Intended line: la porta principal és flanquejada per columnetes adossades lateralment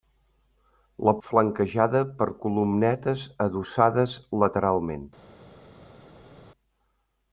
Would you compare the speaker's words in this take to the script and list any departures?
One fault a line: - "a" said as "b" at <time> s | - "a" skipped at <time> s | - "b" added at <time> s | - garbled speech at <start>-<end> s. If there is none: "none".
- "porta principal és" skipped at 1.1 s